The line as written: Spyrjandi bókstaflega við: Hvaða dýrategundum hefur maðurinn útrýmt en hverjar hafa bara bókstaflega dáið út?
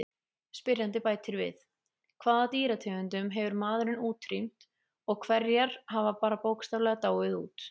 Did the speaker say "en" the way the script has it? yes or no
no